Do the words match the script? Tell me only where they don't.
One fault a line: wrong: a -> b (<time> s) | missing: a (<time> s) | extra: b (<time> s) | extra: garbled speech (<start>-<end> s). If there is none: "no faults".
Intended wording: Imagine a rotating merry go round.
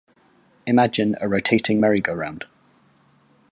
no faults